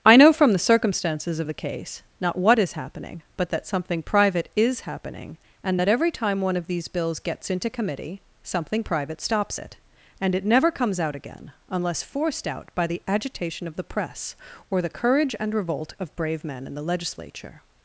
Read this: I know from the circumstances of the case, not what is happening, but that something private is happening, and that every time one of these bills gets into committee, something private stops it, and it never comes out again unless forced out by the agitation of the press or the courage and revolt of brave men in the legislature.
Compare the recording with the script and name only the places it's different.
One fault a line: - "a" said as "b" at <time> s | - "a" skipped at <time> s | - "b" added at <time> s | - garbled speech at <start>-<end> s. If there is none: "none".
none